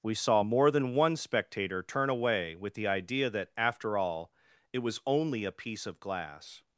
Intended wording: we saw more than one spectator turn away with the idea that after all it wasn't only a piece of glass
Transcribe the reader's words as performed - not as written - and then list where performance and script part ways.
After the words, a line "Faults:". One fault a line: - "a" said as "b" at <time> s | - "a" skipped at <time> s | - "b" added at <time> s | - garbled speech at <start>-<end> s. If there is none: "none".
we saw more than one spectator turn away with the idea that after all it was only a piece of glass
Faults:
- "wasn't" said as "was" at 4.8 s